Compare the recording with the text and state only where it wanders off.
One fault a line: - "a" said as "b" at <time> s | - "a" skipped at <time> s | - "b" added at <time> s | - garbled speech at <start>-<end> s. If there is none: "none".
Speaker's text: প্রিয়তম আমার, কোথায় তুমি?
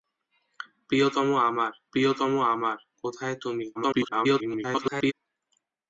- "প্রিয়তম আমার" added at 1.9 s
- garbled speech at 3.7-5.1 s